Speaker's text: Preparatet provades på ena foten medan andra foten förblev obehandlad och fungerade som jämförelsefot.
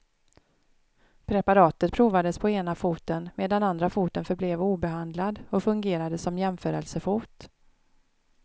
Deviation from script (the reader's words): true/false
false